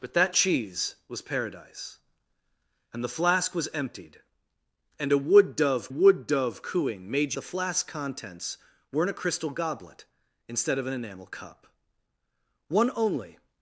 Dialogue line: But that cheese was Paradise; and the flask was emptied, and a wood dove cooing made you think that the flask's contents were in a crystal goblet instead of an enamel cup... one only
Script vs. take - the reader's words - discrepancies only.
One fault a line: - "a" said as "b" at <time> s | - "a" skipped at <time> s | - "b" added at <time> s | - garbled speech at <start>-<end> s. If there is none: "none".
- "wood dove" added at 5.9 s
- "you think that" skipped at 7.3 s